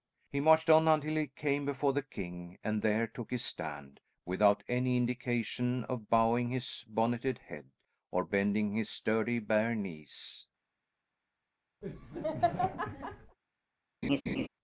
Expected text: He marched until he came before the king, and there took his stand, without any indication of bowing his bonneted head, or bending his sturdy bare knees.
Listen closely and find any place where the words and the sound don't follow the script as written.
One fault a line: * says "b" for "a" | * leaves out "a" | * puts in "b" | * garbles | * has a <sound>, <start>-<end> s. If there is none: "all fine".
* puts in "on"
* has a laugh, 11.8-13.4 s
* has a laugh, 14.0-14.5 s